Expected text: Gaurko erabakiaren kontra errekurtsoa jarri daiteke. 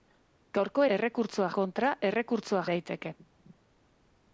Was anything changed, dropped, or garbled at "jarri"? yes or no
yes